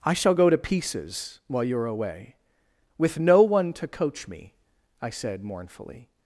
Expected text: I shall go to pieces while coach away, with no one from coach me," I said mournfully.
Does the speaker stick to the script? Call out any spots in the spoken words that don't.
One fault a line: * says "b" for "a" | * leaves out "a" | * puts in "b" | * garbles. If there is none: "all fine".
* says "you're" for "coach"
* says "to" for "from"